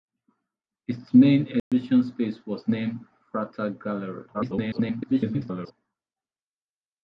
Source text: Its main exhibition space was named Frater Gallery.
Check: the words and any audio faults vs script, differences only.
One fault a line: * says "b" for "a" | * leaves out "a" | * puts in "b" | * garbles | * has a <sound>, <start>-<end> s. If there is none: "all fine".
* has a dropout, 1.6-1.7 s
* garbles